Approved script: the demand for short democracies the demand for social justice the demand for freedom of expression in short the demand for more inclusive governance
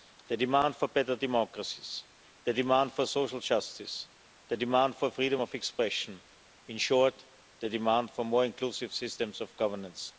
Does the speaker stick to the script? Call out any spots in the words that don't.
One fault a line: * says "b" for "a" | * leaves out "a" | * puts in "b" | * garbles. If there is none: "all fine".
* says "better" for "short"
* puts in "systems of"